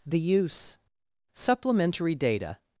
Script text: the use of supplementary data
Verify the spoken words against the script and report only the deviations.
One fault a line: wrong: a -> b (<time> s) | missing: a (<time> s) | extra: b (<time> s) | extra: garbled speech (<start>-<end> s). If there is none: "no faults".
missing: of (0.8 s)